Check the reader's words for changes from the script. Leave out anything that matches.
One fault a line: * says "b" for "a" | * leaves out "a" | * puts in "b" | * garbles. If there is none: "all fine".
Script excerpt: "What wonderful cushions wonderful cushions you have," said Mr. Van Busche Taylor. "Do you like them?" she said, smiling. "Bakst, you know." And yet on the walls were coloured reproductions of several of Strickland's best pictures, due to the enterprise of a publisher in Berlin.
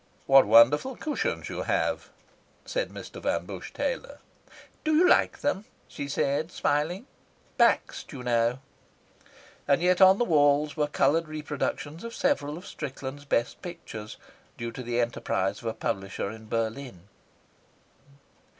* leaves out "wonderful cushions"